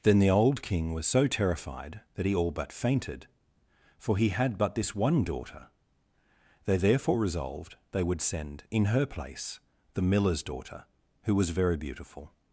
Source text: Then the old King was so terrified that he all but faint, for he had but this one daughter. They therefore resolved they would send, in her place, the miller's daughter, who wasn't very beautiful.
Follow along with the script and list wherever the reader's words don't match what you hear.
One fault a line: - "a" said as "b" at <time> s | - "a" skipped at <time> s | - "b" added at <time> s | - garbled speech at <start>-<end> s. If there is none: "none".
- "faint" said as "fainted" at 2.7 s
- "wasn't" said as "was" at 11.3 s